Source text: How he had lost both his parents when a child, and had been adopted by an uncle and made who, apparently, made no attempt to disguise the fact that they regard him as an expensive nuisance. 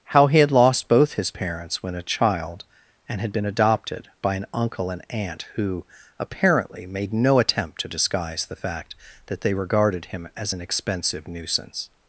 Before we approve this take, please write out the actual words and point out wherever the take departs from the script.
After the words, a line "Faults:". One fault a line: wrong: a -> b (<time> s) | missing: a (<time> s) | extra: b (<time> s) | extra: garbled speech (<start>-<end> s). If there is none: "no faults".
How he had lost both his parents when a child, and had been adopted by an uncle and aunt who, apparently, made no attempt to disguise the fact that they regarded him as an expensive nuisance.
Faults:
wrong: made -> aunt (5.1 s)
wrong: regard -> regarded (9.5 s)